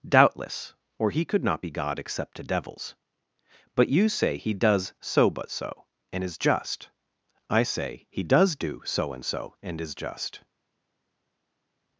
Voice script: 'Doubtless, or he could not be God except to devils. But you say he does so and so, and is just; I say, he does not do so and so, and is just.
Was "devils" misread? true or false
false